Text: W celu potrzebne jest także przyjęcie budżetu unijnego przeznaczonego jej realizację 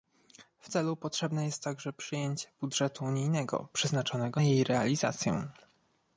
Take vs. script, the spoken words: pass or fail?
pass